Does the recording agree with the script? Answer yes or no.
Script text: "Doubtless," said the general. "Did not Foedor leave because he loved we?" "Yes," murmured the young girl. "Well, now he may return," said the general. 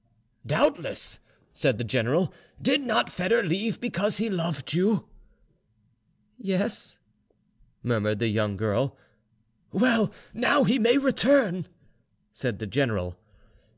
no